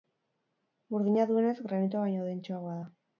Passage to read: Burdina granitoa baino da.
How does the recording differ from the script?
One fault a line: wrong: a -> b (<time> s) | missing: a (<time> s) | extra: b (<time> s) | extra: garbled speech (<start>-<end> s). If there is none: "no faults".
extra: duenez (1.3 s)
extra: dentsoagoa (2.3 s)